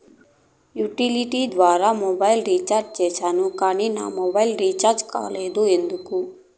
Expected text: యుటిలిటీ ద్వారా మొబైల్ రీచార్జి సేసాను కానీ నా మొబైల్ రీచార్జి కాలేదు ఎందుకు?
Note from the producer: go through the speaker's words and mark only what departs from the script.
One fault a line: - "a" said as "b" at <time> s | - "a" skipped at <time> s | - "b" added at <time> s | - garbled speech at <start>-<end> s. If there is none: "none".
none